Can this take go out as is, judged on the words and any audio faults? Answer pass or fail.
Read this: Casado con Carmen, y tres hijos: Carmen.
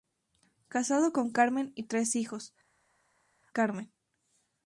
pass